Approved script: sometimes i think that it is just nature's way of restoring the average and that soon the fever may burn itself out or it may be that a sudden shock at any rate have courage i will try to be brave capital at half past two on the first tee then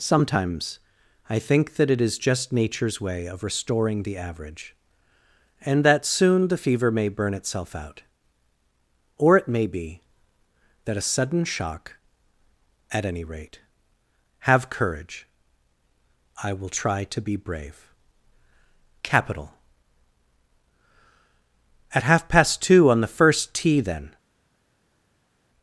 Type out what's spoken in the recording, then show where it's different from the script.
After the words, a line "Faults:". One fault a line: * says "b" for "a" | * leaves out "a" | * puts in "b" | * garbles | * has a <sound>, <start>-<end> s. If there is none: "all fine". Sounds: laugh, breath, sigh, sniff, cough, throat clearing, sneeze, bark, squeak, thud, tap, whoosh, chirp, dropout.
sometimes i think that it is just nature's way of restoring the average and that soon the fever may burn itself out or it may be that a sudden shock at any rate have courage i will try to be brave capital at half past two on the first tee then
Faults:
all fine